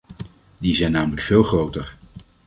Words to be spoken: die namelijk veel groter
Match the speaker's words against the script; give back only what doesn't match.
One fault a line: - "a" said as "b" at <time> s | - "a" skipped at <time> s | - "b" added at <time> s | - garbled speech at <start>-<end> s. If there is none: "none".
- "zijn" added at 0.8 s